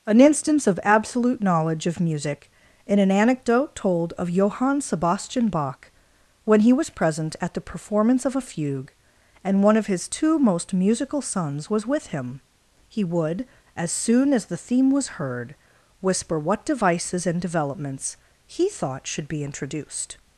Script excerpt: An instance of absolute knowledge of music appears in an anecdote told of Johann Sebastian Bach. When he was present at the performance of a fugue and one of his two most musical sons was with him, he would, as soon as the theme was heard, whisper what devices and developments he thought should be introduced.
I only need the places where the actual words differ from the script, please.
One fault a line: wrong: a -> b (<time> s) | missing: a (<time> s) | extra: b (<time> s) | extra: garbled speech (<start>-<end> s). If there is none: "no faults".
missing: appears (2.5 s)